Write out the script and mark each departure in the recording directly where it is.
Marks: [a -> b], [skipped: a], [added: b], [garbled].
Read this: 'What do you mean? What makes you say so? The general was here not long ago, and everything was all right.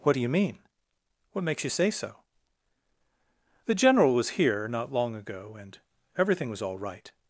'What do you mean? What makes you say so? The general was here not long ago, and everything was all right.